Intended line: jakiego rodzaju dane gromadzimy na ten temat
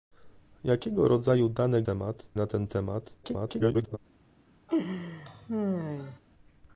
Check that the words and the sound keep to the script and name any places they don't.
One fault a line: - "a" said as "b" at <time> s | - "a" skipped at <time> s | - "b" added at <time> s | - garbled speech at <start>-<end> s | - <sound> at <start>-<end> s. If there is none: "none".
- "gromadzimy" said as "temat" at 1.8 s
- garbled speech at 3.2-4.0 s
- laugh at 4.7-6.2 s